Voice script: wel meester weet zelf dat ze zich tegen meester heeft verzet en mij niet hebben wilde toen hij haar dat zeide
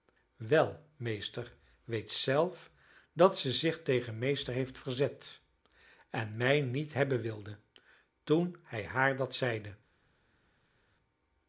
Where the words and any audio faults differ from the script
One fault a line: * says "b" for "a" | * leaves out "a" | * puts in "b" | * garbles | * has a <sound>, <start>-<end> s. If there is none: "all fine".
all fine